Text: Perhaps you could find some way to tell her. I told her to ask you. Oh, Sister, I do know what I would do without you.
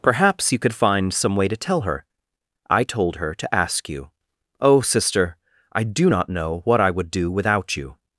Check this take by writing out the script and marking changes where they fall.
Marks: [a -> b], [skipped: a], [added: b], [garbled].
Perhaps you could find some way to tell her. I told her to ask you. Oh, Sister, I do [added: not] know what I would do without you.